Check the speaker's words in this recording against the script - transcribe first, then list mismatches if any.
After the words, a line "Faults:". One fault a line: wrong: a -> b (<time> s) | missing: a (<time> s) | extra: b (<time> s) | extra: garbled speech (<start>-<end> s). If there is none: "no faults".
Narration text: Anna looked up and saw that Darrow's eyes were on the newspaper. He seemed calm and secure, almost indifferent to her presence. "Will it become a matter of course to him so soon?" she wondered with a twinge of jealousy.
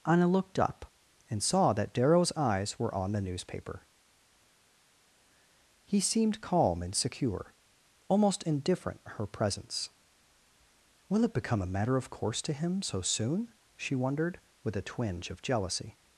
Anna looked up and saw that Darrow's eyes were on the newspaper. He seemed calm and secure, almost indifferent her presence. "Will it become a matter of course to him so soon?" she wondered with a twinge of jealousy.
Faults:
missing: to (9.0 s)